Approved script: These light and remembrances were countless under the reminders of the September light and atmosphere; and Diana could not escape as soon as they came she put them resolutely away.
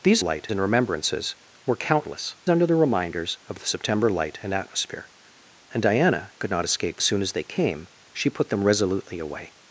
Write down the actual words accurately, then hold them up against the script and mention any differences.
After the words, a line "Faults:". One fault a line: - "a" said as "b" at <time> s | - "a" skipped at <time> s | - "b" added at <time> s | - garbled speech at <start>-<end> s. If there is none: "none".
These light and remembrances were countless under the reminders of the September light and atmosphere; and Diana could not escape as soon as they came she put them resolutely away.
Faults:
none